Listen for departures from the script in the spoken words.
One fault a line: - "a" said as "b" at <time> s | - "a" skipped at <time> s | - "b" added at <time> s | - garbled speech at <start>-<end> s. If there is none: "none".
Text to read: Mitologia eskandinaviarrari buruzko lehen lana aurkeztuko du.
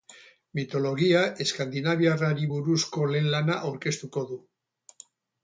none